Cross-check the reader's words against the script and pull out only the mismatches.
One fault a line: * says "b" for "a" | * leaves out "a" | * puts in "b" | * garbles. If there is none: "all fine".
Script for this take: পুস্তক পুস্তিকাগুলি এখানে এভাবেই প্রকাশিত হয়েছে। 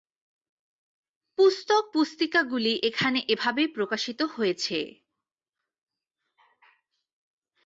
all fine